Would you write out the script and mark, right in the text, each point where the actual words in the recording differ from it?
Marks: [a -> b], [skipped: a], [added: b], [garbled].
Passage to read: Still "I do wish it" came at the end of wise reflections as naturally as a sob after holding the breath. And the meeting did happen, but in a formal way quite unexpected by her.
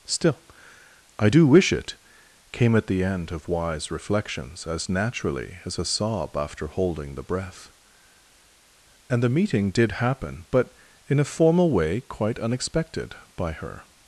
Still "I do wish it" came at the end of wise reflections as naturally as a sob after holding the breath. And the meeting did happen, but in a formal way quite unexpected by her.